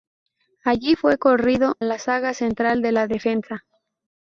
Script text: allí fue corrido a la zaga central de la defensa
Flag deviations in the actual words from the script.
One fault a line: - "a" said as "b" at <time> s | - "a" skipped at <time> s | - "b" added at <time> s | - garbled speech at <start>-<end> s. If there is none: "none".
- "a" skipped at 1.8 s